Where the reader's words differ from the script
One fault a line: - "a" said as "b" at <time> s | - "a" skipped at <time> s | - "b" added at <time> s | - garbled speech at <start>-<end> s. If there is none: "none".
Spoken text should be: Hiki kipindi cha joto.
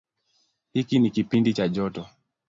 - "ni" added at 1.0 s